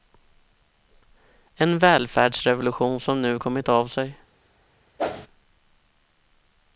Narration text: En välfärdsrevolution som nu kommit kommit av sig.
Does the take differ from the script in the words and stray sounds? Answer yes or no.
yes